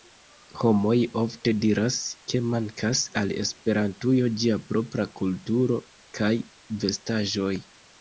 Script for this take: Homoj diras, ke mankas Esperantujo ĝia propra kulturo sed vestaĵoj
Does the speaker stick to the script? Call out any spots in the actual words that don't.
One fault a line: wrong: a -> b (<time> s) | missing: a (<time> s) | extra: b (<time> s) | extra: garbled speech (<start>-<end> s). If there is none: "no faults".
extra: ofte (1.2 s)
extra: al (3.2 s)
wrong: sed -> kaj (6.2 s)